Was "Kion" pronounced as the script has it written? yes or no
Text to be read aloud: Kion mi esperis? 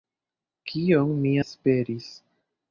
yes